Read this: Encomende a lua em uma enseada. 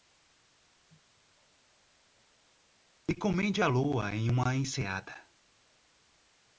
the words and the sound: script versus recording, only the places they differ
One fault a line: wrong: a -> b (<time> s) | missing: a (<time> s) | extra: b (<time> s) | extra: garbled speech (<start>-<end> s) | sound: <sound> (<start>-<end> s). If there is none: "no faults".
no faults